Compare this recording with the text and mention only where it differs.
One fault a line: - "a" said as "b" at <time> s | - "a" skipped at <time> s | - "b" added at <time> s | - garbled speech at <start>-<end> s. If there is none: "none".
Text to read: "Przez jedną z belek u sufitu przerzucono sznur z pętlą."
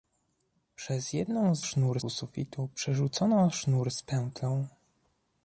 - "belek" said as "sznur" at 1.6 s